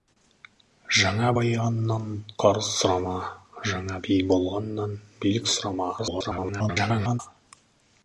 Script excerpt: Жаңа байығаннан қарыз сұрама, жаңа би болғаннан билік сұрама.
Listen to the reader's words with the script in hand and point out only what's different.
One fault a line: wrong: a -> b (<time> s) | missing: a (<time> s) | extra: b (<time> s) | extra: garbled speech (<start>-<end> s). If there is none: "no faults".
extra: garbled speech (6.0-7.2 s)